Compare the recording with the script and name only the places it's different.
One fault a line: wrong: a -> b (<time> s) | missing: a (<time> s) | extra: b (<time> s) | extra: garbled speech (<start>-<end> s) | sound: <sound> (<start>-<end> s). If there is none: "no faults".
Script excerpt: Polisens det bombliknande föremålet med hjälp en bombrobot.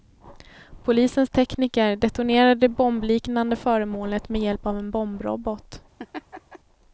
extra: tekniker detonerade (1.3 s)
extra: av (4.7 s)
sound: laugh (6.0-6.6 s)